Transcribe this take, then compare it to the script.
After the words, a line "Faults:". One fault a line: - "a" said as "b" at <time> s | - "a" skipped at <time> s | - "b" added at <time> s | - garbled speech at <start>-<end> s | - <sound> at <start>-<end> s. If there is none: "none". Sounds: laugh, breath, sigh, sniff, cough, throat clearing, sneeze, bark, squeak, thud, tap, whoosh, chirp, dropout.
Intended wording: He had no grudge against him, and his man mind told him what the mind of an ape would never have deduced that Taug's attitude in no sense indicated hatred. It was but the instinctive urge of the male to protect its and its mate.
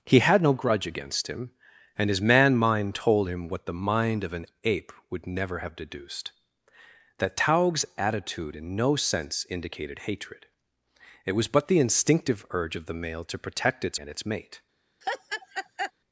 He had no grudge against him, and his man mind told him what the mind of an ape would never have deduced that Taug's attitude in no sense indicated hatred. It was but the instinctive urge of the male to protect its and its mate.
Faults:
- laugh at 15.0-15.9 s